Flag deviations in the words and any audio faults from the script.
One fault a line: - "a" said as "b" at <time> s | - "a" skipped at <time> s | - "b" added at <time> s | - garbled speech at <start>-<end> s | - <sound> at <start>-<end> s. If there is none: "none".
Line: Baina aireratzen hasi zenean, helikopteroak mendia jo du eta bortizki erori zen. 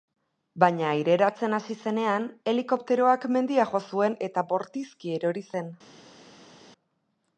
- "du" said as "zuen" at 3.9 s